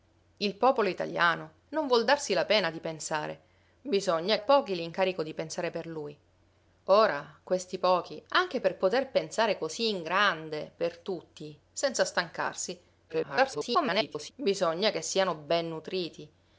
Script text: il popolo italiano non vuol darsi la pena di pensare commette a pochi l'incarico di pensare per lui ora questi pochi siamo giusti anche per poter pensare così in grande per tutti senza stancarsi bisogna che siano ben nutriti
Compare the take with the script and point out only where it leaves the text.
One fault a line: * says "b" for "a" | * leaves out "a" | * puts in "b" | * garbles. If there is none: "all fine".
* says "bisogna" for "commette"
* leaves out "siamo giusti"
* garbles